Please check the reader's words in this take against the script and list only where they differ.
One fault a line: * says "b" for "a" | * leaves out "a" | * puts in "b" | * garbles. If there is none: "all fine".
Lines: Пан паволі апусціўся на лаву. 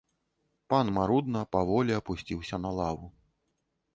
* puts in "марудна"